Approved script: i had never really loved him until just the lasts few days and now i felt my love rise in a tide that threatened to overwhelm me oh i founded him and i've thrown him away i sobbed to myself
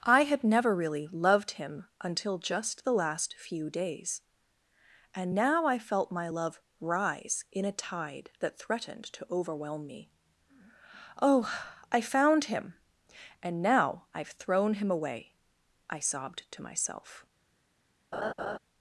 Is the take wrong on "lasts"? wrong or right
wrong